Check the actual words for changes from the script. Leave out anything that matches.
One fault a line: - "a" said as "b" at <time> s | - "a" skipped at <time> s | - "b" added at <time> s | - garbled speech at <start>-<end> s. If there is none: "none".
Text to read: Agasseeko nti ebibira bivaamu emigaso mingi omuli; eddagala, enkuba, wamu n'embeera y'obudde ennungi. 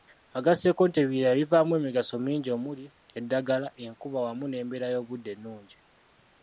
none